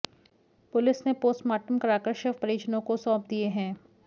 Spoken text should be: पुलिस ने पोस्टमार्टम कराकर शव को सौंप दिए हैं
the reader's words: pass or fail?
fail